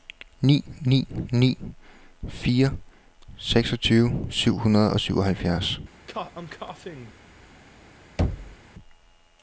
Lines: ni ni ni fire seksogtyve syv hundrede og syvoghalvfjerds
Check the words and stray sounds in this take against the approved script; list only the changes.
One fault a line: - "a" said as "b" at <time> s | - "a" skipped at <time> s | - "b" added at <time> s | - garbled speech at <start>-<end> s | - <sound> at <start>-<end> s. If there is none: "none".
- cough at 6.1-7.1 s
- thud at 8.2-8.6 s